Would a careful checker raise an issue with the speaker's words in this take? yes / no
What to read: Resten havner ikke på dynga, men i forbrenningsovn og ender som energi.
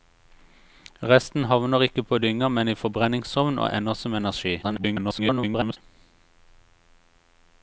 yes